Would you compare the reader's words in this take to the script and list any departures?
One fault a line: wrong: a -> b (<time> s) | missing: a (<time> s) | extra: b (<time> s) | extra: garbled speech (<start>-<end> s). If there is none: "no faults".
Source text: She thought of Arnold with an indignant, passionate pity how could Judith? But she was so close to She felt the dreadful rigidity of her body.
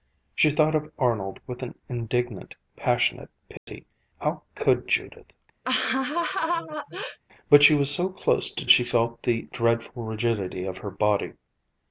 no faults